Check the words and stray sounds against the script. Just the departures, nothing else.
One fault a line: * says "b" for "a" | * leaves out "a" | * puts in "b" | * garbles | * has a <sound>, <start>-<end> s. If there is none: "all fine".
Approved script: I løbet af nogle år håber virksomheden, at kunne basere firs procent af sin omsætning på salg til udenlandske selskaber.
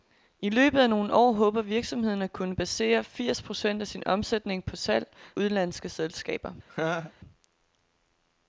* leaves out "til"
* has a laugh, 6.7-7.1 s